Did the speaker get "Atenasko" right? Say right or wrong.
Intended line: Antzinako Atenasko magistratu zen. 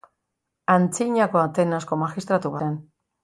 right